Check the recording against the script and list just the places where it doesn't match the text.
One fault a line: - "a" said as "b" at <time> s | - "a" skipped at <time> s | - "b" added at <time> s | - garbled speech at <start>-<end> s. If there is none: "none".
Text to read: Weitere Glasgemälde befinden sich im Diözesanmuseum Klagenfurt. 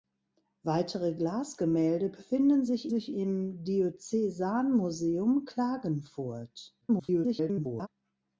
- "sich" added at 2.9 s
- garbled speech at 6.8-7.9 s